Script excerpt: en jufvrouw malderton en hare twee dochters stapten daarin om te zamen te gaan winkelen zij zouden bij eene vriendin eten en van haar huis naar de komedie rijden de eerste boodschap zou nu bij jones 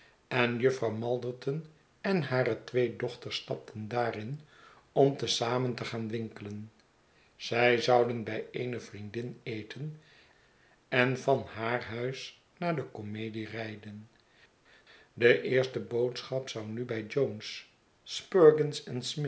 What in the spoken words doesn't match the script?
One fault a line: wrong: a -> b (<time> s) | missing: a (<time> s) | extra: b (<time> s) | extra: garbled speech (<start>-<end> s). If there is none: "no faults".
no faults